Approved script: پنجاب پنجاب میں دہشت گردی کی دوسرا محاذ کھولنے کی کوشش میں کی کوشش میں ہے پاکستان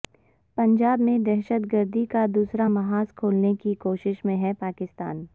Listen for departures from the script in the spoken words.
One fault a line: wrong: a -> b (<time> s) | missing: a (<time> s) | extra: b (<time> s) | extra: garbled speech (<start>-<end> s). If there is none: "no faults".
missing: پنجاب (1.0 s)
wrong: کی -> کا (2.0 s)
missing: کی کوشش میں (4.4 s)